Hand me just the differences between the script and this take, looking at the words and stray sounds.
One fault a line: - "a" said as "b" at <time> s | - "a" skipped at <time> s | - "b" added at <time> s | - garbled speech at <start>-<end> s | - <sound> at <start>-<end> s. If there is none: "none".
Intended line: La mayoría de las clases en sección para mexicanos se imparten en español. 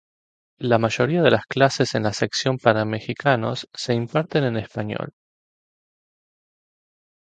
- "la" added at 2.0 s